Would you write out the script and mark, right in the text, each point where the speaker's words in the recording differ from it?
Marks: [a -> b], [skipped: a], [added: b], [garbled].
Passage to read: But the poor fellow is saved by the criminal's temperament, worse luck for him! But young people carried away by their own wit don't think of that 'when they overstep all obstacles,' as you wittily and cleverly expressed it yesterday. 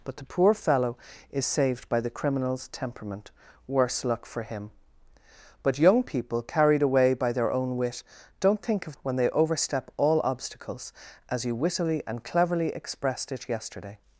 But the poor fellow is saved by the criminal's temperament, worse luck for him! But young people carried away by their own wit don't think of [skipped: that] 'when they overstep all obstacles,' as you wittily and cleverly expressed it yesterday.